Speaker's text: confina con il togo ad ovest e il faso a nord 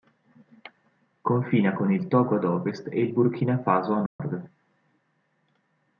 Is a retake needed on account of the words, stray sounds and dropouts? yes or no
yes